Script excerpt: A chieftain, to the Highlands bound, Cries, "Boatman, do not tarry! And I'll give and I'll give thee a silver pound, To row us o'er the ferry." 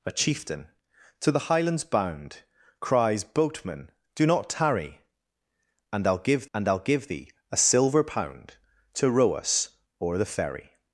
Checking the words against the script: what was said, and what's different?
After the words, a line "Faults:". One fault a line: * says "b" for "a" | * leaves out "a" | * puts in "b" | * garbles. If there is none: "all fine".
A chieftain, to the Highlands bound, Cries, "Boatman, do not tarry! And I'll give and I'll give thee a silver pound, To row us o'er the ferry."
Faults:
all fine